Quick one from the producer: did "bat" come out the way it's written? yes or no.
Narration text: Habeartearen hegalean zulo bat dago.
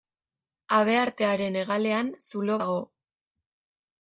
no